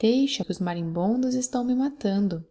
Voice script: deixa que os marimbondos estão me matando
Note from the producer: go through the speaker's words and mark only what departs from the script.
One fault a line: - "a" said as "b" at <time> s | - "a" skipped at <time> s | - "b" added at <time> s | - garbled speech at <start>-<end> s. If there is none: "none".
none